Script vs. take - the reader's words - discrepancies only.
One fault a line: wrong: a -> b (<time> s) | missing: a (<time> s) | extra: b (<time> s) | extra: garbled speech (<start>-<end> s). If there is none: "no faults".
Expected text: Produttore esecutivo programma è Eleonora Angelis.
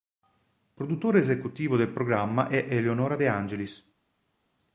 extra: del (1.8 s)
extra: De (3.1 s)